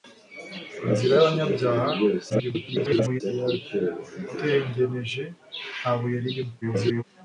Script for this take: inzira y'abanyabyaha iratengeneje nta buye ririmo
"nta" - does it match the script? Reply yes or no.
yes